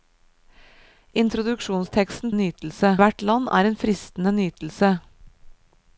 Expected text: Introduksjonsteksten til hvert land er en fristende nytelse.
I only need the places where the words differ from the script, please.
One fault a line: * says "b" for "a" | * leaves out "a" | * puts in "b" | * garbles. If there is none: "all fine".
* says "nytelse" for "til"